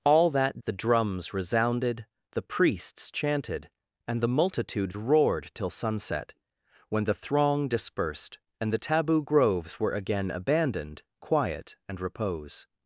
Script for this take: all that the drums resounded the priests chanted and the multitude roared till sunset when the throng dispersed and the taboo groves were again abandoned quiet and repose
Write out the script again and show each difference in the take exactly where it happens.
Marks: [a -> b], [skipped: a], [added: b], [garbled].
all that the drums resounded the priests chanted and the multitude roared till sunset when the throng dispersed and the taboo groves were again abandoned quiet and repose